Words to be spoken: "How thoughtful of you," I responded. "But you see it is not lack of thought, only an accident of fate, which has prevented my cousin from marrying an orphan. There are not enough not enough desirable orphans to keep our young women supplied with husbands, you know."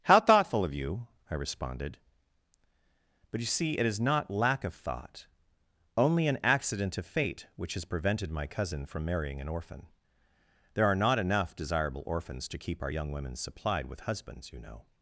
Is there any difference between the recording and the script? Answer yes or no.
yes